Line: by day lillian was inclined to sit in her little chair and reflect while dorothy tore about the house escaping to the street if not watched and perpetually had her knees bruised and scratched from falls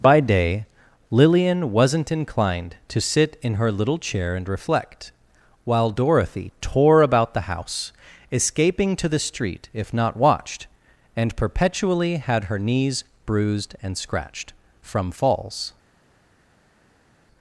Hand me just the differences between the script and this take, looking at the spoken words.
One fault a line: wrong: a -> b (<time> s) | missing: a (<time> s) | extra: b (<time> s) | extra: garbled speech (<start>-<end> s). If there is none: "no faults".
wrong: was -> wasn't (1.7 s)